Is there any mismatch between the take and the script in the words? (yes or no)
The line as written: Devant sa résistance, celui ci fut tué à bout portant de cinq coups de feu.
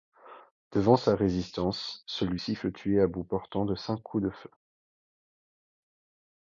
no